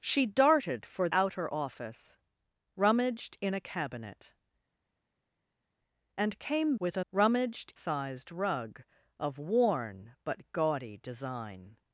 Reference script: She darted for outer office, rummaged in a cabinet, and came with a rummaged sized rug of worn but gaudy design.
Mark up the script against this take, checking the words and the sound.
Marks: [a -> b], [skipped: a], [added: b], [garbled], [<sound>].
She darted for outer office, rummaged in a cabinet, and came with a rummaged sized rug of worn but gaudy design.